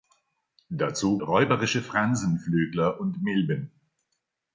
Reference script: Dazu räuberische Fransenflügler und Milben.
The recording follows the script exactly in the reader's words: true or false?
true